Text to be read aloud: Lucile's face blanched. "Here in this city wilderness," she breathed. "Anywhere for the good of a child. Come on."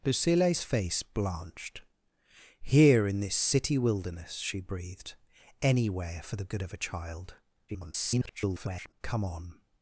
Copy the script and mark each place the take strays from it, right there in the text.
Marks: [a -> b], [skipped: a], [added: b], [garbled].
Lucile's face blanched. "Here in this city wilderness," she breathed. "Anywhere for the good of a child. [garbled] Come on."